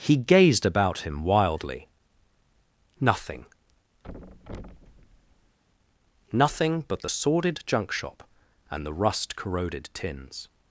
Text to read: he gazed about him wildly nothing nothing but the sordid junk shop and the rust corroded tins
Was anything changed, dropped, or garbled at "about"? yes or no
no